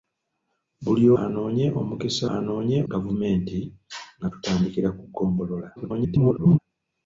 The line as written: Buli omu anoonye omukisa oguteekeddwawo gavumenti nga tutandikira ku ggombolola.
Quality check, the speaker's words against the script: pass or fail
fail